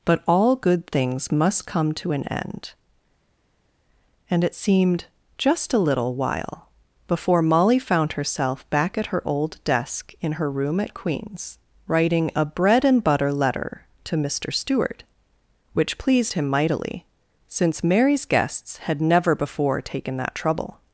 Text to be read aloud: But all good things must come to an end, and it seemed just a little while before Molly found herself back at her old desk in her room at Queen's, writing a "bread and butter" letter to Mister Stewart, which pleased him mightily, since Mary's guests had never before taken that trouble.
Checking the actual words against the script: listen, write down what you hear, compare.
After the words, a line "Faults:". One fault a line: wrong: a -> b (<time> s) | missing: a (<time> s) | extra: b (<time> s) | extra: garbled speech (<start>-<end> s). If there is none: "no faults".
But all good things must come to an end, and it seemed just a little while before Molly found herself back at her old desk in her room at Queen's, writing a "bread and butter" letter to Mister Stewart, which pleased him mightily, since Mary's guests had never before taken that trouble.
Faults:
no faults